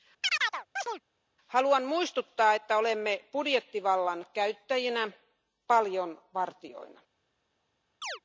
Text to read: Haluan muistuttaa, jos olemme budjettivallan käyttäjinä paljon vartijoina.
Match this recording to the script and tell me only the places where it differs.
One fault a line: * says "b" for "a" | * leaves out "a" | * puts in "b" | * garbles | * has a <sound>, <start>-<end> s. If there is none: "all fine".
* has a chirp, 0.2-1.0 s
* says "että" for "jos"
* has a chirp, 8.0-8.2 s